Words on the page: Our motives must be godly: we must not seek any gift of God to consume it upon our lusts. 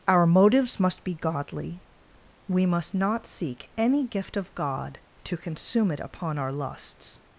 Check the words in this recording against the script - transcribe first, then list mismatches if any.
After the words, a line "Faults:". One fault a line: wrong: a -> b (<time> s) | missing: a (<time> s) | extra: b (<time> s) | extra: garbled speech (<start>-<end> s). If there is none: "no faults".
Our motives must be godly: we must not seek any gift of God to consume it upon our lusts.
Faults:
no faults